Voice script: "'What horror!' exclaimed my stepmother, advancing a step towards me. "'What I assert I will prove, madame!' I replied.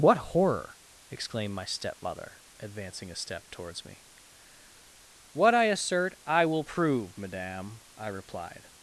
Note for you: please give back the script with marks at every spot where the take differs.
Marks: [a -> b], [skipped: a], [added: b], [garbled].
"'What horror!' exclaimed my stepmother, advancing a step towards me. "'What I assert I will prove, madame!' I replied.